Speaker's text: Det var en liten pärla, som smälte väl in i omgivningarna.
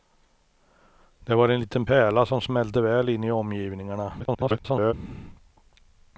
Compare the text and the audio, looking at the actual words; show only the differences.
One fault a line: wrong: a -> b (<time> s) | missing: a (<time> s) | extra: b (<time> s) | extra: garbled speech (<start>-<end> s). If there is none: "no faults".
extra: garbled speech (4.2-4.9 s)